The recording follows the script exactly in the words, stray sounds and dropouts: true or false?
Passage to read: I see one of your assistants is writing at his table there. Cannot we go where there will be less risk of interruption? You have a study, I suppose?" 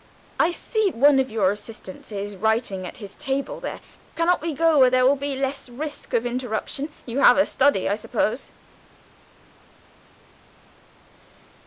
true